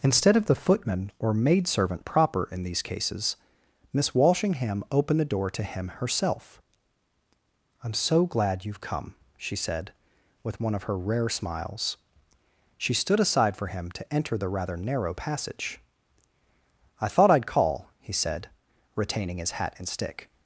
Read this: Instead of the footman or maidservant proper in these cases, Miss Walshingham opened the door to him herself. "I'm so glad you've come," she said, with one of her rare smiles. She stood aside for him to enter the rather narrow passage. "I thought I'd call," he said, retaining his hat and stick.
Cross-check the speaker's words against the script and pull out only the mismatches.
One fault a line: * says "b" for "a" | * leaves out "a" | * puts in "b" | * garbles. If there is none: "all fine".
all fine